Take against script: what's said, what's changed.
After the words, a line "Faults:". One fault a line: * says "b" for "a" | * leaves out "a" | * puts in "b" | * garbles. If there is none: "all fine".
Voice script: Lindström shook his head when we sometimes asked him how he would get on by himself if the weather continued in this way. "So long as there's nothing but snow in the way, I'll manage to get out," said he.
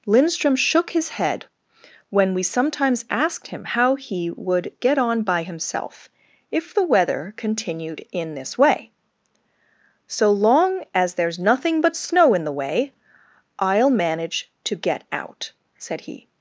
Lindström shook his head when we sometimes asked him how he would get on by himself if the weather continued in this way. "So long as there's nothing but snow in the way, I'll manage to get out," said he.
Faults:
all fine